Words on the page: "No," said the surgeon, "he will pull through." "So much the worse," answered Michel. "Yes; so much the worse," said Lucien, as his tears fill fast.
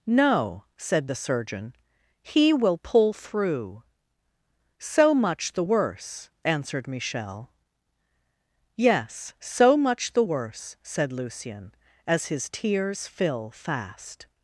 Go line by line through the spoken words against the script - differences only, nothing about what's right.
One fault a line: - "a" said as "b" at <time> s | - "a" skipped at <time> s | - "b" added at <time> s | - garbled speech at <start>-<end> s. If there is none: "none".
none